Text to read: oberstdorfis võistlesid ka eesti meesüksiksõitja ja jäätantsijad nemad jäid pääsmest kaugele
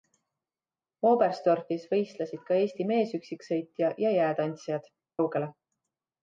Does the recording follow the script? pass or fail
fail